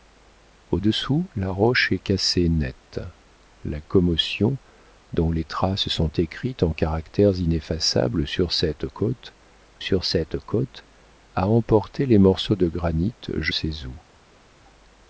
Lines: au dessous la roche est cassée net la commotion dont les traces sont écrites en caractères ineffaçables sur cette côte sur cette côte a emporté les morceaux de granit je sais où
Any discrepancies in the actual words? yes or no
no